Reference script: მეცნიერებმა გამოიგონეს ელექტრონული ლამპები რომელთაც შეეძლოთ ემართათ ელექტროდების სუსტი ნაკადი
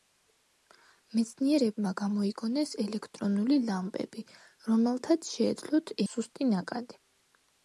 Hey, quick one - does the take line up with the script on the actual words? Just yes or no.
no